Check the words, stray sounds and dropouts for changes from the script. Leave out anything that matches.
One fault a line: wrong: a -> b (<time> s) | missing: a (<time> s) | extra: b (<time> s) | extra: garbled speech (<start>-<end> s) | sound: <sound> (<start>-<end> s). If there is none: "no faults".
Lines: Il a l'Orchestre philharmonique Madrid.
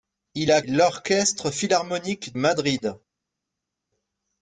no faults